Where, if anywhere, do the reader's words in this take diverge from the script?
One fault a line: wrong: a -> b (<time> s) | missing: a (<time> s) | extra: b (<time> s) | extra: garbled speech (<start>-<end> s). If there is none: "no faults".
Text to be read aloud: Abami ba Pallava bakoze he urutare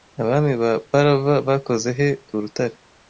no faults